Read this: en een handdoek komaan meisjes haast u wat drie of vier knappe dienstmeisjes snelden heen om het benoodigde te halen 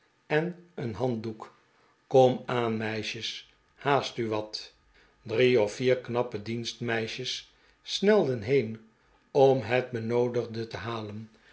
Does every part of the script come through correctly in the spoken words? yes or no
yes